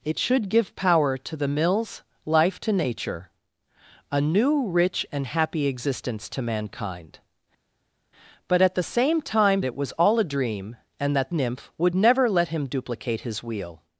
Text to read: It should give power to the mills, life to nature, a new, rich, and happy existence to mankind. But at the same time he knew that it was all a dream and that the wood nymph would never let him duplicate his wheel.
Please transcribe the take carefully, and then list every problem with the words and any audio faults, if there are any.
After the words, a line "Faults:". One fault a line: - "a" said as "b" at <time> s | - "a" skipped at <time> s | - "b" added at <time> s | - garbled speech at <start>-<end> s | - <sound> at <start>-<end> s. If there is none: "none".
It should give power to the mills, life to nature, a new, rich, and happy existence to mankind. But at the same time it was all a dream and that nymph would never let him duplicate his wheel.
Faults:
- "he knew that" skipped at 9.6 s
- "the wood" skipped at 11.3 s